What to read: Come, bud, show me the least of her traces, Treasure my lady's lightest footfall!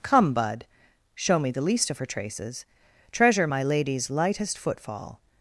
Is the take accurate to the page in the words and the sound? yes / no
yes